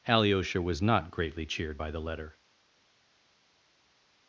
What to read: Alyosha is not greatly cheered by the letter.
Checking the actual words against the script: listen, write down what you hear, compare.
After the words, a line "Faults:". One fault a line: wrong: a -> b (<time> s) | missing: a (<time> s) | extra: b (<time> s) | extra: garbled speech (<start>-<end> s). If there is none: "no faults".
Alyosha was not greatly cheered by the letter.
Faults:
wrong: is -> was (0.6 s)